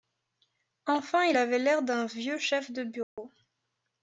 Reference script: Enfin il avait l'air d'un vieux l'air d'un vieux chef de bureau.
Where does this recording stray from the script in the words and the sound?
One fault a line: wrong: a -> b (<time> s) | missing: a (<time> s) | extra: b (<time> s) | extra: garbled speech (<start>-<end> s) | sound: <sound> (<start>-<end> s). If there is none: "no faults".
missing: l'air d'un vieux (2.4 s)
sound: dropout (3.0-3.2 s)